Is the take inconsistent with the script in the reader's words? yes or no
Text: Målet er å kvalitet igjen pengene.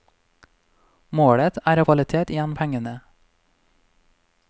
no